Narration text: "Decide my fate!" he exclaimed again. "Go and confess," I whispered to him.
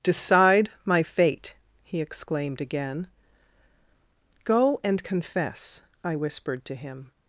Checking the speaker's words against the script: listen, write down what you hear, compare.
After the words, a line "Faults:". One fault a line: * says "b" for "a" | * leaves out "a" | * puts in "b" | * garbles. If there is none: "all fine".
"Decide my fate!" he exclaimed again. "Go and confess," I whispered to him.
Faults:
all fine